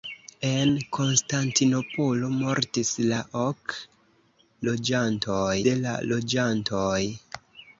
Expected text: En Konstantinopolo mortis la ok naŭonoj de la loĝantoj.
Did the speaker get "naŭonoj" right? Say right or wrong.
wrong